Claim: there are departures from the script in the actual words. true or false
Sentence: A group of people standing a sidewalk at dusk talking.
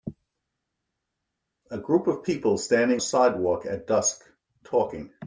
false